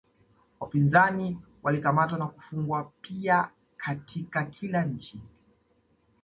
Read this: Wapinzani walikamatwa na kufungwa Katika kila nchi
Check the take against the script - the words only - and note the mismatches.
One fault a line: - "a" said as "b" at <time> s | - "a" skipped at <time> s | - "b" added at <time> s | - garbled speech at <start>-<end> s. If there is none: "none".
- "pia" added at 3.0 s